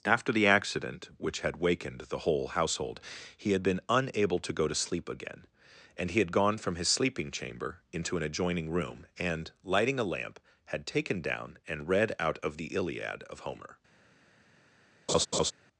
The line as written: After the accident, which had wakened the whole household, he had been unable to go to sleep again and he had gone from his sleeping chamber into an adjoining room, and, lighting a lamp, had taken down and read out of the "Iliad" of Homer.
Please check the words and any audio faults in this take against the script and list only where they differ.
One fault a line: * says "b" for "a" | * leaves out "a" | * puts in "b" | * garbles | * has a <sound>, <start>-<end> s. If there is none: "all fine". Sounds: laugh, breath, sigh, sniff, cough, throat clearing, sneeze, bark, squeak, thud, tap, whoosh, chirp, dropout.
* has a laugh, 15.1-15.5 s